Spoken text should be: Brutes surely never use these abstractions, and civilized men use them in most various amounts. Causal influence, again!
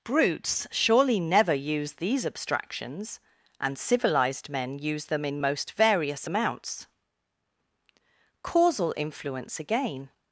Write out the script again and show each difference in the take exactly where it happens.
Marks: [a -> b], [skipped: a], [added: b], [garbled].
Brutes surely never use these abstractions, and civilized men use them in most various amounts. Causal influence, again!